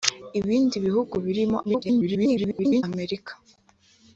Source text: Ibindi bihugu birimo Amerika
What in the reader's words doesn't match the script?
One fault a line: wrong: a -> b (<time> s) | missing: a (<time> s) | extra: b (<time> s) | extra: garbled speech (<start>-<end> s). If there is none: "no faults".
extra: garbled speech (1.6-2.8 s)